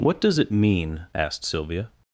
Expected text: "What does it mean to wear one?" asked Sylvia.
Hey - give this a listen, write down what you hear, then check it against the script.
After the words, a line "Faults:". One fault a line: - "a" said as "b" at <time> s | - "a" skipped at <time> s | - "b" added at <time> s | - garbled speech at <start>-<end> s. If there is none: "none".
"What does it mean?" asked Sylvia.
Faults:
- "to wear one" skipped at 1.1 s